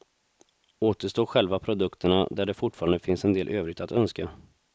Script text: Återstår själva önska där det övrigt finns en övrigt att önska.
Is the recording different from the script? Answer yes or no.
yes